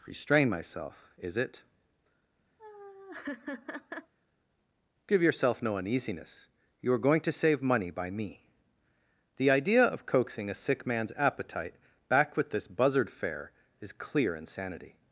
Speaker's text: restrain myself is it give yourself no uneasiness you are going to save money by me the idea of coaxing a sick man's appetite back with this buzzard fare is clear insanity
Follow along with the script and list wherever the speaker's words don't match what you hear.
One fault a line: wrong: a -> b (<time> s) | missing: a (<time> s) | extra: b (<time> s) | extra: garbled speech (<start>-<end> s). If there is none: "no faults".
no faults